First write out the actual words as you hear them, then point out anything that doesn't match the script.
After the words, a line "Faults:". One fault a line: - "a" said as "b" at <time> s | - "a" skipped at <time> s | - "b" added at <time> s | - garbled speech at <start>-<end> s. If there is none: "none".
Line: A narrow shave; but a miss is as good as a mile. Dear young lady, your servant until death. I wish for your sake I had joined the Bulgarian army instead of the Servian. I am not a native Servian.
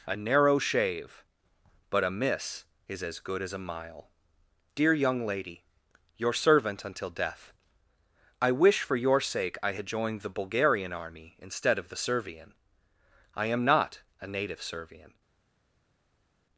A narrow shave; but a miss is as good as a mile. Dear young lady, your servant until death. I wish for your sake I had joined the Bulgarian army instead of the Servian. I am not a native Servian.
Faults:
none